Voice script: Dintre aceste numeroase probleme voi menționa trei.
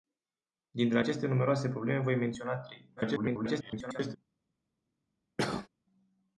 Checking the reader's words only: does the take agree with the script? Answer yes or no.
no